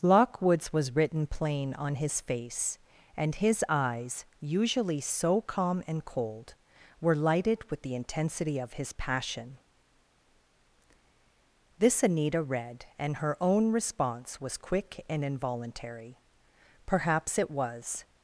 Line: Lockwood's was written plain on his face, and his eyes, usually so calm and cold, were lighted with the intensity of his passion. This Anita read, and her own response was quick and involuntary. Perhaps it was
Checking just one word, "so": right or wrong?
right